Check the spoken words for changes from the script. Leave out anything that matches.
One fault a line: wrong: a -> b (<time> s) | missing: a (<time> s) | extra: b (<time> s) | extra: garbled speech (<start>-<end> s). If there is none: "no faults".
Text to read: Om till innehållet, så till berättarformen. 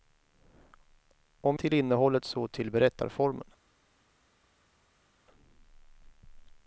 no faults